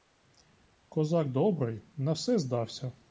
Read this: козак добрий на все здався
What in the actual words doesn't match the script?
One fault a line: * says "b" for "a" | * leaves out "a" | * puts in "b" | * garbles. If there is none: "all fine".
all fine